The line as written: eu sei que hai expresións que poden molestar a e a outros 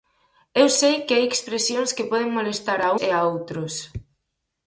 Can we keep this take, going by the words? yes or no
yes